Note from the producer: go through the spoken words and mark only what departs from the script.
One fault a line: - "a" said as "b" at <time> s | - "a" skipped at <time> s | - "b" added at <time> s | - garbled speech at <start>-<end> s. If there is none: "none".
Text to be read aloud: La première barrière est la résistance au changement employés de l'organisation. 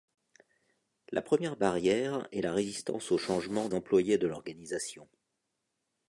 none